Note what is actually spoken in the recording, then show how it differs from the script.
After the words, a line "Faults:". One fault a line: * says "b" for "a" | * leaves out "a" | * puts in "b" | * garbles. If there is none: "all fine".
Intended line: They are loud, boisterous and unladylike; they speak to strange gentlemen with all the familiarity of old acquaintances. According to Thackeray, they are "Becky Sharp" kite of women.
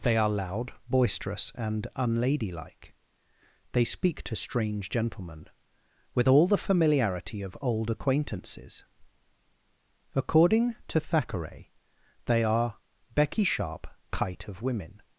They are loud, boisterous and unladylike; they speak to strange gentlemen with all the familiarity of old acquaintances. According to Thackeray, they are "Becky Sharp" kite of women.
Faults:
all fine